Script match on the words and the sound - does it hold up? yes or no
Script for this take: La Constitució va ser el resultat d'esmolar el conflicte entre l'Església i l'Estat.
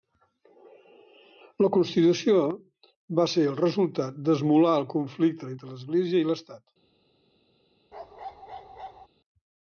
no